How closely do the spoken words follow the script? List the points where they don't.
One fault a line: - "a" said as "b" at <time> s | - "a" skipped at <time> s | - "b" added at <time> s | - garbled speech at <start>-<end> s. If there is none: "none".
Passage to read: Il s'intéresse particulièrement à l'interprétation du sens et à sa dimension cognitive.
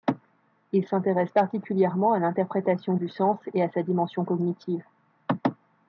none